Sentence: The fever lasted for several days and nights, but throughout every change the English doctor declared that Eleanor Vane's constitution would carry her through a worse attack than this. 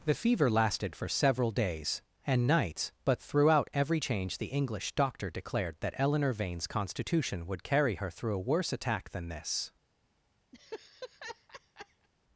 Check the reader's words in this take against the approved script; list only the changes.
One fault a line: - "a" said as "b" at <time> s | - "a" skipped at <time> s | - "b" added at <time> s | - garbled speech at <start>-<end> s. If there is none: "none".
none